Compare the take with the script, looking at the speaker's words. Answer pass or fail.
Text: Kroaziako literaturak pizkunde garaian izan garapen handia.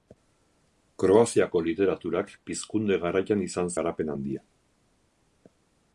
pass